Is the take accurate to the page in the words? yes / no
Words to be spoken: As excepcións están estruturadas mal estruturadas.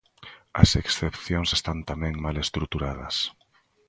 no